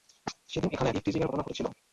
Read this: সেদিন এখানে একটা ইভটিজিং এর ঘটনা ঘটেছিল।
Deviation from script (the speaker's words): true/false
true